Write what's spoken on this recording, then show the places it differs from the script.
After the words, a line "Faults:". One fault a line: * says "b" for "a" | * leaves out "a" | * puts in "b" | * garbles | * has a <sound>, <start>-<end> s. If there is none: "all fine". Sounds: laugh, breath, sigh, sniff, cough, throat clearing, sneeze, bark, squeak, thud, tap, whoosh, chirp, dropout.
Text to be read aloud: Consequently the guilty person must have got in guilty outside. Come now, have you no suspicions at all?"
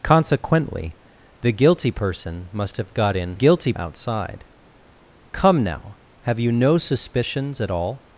Consequently the guilty person must have got in guilty outside. Come now, have you no suspicions at all?"
Faults:
all fine